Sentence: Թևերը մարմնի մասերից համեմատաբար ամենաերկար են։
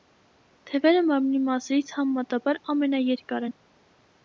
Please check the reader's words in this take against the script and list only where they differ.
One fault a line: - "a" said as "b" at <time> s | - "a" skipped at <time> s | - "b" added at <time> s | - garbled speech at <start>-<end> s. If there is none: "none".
none